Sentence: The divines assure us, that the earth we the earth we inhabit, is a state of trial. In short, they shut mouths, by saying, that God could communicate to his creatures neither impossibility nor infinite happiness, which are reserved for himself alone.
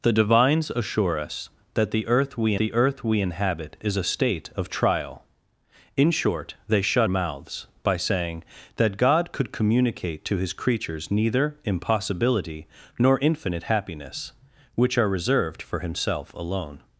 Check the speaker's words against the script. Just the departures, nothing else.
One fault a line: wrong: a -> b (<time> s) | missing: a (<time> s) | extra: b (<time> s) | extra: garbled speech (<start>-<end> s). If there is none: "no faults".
no faults